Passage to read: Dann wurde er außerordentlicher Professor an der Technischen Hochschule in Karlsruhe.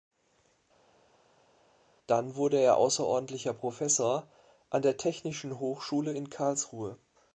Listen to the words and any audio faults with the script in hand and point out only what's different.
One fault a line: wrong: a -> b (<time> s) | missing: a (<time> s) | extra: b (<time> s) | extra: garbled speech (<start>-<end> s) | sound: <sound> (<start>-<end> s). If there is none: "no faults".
no faults